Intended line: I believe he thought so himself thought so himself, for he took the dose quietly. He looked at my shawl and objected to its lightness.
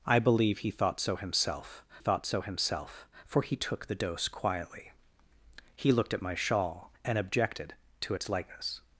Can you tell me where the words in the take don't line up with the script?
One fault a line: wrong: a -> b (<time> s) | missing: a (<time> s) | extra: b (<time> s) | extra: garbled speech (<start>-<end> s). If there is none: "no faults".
no faults